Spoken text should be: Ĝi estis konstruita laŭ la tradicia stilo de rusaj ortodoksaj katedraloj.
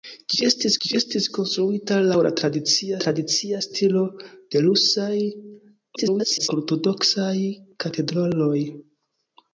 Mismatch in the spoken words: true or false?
true